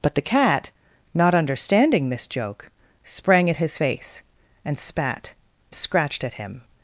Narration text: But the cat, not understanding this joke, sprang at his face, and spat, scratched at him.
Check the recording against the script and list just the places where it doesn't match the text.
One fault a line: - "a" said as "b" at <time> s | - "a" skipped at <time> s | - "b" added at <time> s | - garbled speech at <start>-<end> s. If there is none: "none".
none